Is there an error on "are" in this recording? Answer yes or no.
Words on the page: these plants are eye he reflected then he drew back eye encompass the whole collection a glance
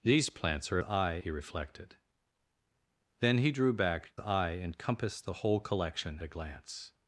no